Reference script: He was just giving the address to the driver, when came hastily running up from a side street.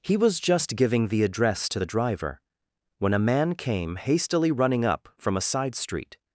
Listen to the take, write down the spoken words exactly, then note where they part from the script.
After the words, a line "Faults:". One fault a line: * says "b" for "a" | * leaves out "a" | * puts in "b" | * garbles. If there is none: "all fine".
He was just giving the address to the driver, when a man came hastily running up from a side street.
Faults:
* puts in "a man"